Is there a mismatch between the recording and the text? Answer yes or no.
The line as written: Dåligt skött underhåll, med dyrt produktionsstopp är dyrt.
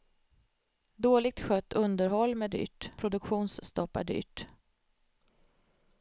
no